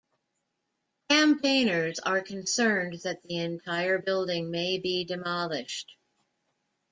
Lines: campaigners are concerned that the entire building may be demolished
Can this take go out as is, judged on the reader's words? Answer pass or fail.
pass